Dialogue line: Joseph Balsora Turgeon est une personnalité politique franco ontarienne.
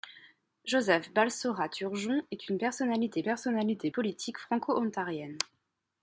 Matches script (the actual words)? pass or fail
fail